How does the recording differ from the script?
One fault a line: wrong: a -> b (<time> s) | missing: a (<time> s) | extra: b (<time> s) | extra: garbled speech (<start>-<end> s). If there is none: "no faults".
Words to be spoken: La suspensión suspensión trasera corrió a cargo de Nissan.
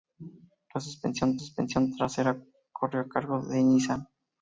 no faults